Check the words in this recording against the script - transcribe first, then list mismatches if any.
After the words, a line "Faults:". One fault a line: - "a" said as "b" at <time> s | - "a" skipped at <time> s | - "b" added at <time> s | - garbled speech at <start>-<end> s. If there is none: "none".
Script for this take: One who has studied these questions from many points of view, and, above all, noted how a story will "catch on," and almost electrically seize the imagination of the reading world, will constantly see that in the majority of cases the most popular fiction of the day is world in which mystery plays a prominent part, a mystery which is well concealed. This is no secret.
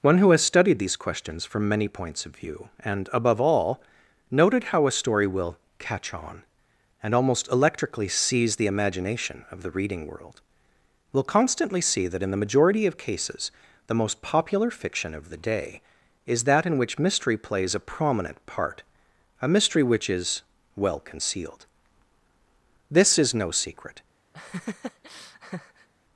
One who has studied these questions from many points of view, and, above all, noted how a story will "catch on," and almost electrically seize the imagination of the reading world, will constantly see that in the majority of cases the most popular fiction of the day is that in which mystery plays a prominent part, a mystery which is well concealed. This is no secret.
Faults:
- "world" said as "that" at 16.4 s